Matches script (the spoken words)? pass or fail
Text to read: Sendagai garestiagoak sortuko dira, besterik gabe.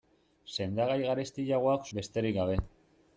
fail